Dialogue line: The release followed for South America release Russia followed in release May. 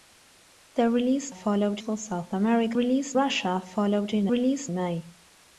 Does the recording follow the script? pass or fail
pass